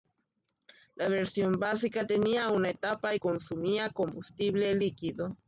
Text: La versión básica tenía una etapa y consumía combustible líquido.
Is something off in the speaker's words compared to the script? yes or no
no